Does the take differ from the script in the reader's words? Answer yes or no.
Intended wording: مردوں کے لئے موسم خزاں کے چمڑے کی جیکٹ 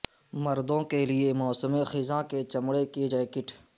no